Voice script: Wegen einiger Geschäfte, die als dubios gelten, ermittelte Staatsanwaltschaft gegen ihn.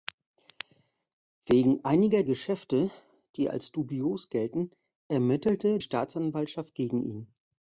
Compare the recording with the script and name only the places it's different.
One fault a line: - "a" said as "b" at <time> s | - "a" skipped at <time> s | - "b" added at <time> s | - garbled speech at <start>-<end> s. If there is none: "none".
none